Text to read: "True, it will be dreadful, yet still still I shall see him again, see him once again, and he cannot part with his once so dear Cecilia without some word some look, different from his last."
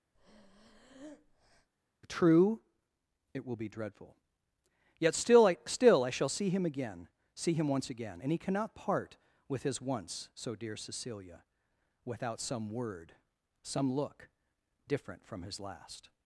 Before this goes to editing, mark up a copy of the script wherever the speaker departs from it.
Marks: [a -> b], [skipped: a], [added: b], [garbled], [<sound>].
[breath] "True, it will be dreadful, yet still [added: I] still I shall see him again, see him once again, and he cannot part with his once so dear Cecilia without some word some look, different from his last."